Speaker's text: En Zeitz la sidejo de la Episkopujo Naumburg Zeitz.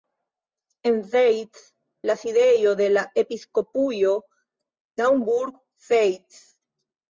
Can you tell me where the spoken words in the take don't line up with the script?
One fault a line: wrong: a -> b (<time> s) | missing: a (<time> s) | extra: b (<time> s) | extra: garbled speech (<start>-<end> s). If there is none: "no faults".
no faults